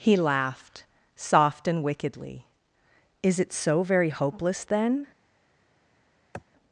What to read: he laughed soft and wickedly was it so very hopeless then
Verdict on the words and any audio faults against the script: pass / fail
fail